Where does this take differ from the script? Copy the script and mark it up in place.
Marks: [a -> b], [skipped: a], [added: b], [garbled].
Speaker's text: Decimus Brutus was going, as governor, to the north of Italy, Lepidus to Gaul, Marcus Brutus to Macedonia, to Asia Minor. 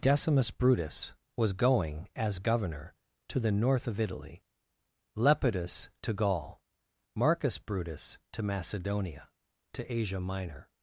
Decimus Brutus was going, as governor, to the north of Italy, Lepidus to Gaul, Marcus Brutus to Macedonia, to Asia Minor.